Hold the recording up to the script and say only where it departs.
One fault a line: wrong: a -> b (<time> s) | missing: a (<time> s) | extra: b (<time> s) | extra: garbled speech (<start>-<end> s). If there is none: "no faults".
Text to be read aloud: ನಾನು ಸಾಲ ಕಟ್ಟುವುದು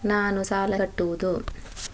no faults